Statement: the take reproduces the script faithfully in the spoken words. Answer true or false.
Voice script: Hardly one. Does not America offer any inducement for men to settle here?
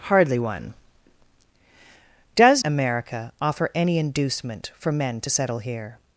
false